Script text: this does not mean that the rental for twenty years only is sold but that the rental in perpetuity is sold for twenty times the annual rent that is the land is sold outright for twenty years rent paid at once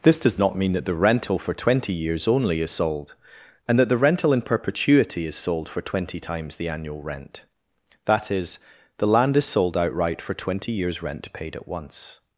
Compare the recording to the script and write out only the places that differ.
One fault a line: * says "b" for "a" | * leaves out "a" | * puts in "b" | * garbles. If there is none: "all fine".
* says "and" for "but"